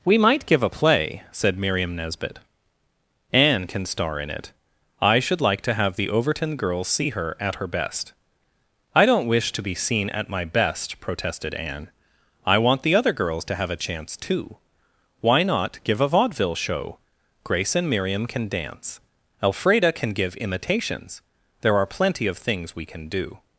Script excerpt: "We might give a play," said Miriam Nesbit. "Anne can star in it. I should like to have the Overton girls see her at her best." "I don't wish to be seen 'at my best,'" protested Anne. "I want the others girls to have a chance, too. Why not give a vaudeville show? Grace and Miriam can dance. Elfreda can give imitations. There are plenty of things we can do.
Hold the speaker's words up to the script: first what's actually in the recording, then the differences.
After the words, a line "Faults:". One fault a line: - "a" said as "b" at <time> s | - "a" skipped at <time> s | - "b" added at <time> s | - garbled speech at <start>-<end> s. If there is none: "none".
"We might give a play," said Miriam Nesbit. "Anne can star in it. I should like to have the Overton girls see her at her best." "I don't wish to be seen 'at my best,'" protested Anne. "I want the other girls to have a chance, too. Why not give a vaudeville show? Grace and Miriam can dance. Elfreda can give imitations. There are plenty of things we can do.
Faults:
- "others" said as "other" at 13.0 s